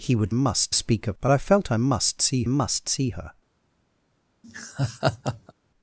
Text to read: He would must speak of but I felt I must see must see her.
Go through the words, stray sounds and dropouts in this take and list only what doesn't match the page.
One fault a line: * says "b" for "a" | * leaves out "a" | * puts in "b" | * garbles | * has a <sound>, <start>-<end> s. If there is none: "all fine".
* has a laugh, 4.4-5.5 s